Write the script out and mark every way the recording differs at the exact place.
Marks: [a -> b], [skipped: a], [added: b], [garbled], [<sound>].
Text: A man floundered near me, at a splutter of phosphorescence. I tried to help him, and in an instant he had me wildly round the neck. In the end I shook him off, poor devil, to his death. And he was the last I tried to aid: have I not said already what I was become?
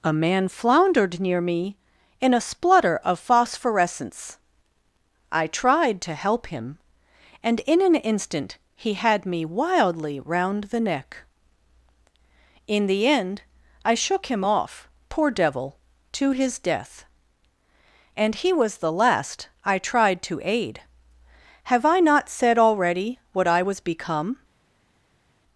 A man floundered near me, [at -> in] a splutter of phosphorescence. I tried to help him, and in an instant he had me wildly round the neck. In the end I shook him off, poor devil, to his death. And he was the last I tried to aid: have I not said already what I was become?